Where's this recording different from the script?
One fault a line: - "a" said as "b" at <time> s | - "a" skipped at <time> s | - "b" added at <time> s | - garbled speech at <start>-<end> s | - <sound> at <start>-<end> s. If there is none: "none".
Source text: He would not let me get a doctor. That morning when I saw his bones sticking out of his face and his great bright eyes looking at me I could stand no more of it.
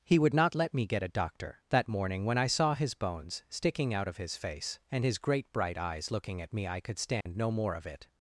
- dropout at 7.2-7.3 s